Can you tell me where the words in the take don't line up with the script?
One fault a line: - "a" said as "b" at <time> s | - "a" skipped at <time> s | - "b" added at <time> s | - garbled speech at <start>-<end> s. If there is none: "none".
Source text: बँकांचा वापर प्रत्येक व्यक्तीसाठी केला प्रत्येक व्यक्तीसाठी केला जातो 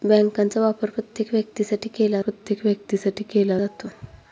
none